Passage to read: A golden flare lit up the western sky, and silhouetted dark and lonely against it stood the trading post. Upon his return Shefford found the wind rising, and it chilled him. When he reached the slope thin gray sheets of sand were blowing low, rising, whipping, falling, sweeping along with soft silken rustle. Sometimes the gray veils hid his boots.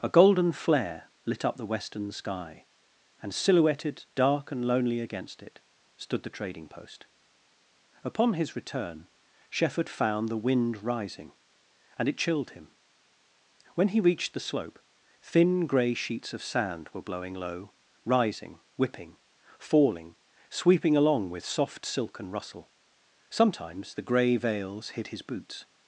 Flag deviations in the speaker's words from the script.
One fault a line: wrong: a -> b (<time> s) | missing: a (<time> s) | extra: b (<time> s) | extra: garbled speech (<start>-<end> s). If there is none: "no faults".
no faults